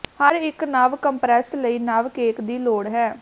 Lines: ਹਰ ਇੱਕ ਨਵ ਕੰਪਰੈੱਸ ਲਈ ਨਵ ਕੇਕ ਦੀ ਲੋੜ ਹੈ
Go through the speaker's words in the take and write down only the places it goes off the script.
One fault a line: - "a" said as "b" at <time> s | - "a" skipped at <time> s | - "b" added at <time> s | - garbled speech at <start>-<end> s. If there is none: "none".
none